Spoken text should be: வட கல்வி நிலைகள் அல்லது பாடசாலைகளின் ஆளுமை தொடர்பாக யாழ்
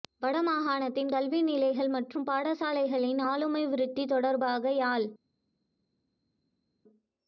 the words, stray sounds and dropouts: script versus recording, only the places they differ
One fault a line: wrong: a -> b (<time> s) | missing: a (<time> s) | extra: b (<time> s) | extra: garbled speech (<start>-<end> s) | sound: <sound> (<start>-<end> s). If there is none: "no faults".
extra: மாகாணத்தின் (0.4 s)
wrong: அல்லது -> மற்றும் (1.9 s)
extra: விருத்தி (3.7 s)